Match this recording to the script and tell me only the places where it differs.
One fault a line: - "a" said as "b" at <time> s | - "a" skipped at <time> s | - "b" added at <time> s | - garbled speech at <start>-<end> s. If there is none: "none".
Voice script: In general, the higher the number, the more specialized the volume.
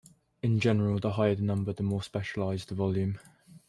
none